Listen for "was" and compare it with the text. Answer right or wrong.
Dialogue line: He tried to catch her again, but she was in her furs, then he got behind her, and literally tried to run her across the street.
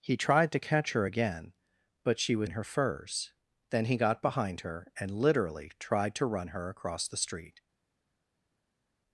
right